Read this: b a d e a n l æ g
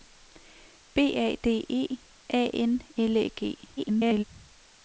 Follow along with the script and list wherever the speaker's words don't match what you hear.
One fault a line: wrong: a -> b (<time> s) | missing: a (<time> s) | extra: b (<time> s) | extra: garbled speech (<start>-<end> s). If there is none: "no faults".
extra: garbled speech (3.8-4.2 s)